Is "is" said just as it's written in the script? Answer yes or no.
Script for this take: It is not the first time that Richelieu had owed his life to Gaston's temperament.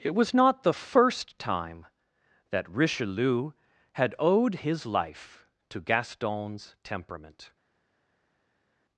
no